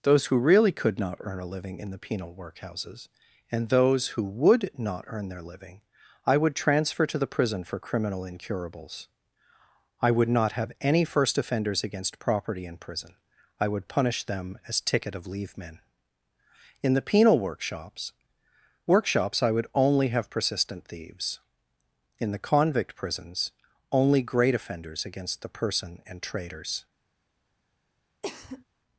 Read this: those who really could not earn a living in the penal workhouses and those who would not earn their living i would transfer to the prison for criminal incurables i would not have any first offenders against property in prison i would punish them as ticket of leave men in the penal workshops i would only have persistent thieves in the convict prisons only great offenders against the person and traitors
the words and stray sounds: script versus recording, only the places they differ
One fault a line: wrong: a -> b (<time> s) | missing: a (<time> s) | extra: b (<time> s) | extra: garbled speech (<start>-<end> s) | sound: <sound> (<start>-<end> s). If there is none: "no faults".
extra: workshops (18.9 s)
sound: cough (28.2-28.6 s)